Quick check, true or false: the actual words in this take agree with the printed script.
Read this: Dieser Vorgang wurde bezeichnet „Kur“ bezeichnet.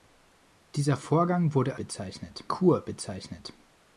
true